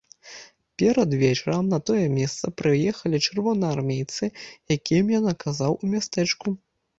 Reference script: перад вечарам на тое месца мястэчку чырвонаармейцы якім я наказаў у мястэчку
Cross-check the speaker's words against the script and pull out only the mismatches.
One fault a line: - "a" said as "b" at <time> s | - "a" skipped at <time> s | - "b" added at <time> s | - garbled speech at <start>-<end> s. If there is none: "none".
- "мястэчку" said as "прыехалі" at 2.6 s